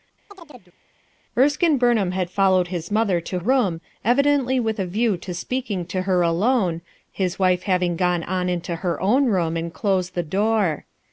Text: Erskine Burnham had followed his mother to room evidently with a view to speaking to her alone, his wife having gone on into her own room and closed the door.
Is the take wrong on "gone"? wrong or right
right